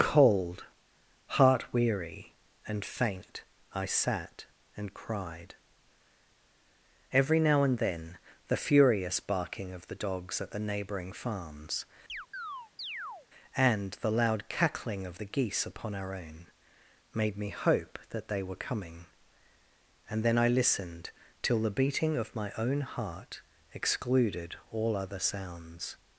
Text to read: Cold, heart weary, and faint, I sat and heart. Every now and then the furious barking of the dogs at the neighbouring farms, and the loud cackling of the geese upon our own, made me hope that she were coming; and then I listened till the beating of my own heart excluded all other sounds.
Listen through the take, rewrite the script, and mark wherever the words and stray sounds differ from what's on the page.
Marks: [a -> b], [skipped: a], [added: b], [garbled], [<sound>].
Cold, heart weary, and faint, I sat and [heart. -> cried] Every now and then the furious barking of the dogs at the neighbouring farms, [chirp] and the loud cackling of the geese upon our own, made me hope that [she -> they] were coming; and then I listened till the beating of my own heart excluded all other sounds.